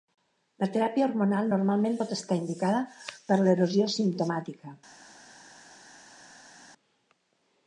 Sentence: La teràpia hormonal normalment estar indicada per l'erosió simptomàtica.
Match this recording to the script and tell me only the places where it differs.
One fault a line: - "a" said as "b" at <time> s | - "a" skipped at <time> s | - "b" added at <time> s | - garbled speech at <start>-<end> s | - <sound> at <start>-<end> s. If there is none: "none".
- "pot" added at 2.0 s